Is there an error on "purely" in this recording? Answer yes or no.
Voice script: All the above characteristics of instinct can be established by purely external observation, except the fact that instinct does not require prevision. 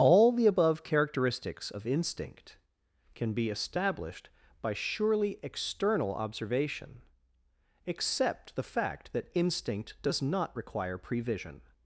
yes